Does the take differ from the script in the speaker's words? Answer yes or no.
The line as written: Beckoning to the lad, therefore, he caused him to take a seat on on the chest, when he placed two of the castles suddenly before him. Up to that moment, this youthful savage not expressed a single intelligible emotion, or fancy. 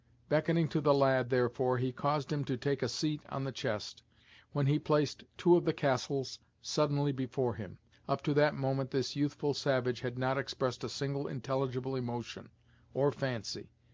yes